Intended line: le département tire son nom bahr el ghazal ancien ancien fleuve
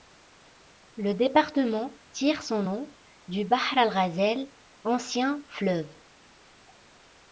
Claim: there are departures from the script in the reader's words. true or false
true